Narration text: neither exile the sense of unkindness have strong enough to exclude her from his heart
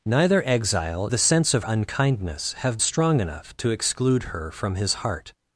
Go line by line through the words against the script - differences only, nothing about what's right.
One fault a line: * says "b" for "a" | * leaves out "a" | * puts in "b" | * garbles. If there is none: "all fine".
all fine